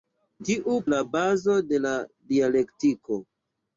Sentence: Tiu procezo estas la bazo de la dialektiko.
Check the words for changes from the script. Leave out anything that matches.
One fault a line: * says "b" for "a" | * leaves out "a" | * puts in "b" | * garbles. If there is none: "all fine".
* leaves out "procezo estas"